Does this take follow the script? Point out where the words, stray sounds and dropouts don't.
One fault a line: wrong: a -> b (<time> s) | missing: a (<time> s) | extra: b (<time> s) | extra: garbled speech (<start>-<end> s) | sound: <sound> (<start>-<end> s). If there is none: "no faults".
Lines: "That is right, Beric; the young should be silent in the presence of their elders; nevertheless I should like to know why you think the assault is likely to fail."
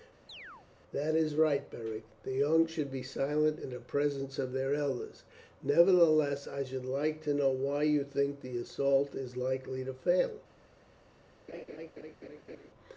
sound: chirp (0.3-0.7 s)
sound: laugh (11.5-12.7 s)